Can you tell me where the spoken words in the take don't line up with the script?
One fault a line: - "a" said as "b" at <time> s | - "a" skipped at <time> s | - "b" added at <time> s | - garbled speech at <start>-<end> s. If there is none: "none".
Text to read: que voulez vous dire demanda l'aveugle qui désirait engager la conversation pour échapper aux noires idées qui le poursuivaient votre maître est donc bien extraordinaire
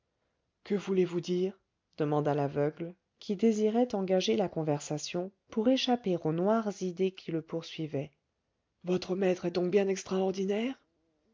none